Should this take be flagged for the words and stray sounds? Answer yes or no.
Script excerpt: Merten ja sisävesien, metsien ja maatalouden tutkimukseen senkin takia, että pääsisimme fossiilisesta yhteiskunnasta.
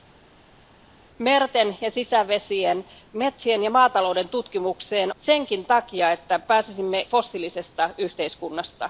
no